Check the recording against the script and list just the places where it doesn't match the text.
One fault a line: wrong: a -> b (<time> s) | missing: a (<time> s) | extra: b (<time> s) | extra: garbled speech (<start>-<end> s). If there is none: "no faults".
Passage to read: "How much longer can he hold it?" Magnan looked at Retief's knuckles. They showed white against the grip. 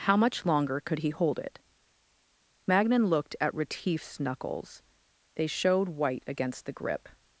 wrong: can -> could (0.8 s)